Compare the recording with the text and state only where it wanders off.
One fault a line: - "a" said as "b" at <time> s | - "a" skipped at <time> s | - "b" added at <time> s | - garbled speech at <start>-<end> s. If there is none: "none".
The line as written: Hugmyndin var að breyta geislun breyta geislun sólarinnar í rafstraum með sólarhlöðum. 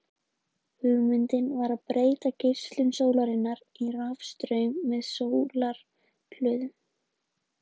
- "breyta geislun" skipped at 2.9 s